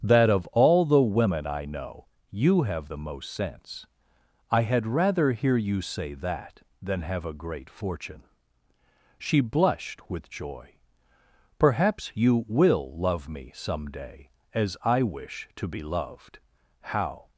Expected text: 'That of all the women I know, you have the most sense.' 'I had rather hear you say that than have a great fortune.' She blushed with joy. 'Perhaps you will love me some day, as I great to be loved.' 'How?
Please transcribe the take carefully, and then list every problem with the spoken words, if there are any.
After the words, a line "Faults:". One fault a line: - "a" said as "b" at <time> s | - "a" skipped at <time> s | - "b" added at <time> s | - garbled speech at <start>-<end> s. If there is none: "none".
'That of all the women I know, you have the most sense.' 'I had rather hear you say that than have a great fortune.' She blushed with joy. 'Perhaps you will love me some day, as I wish to be loved.' 'How?
Faults:
- "great" said as "wish" at 15.0 s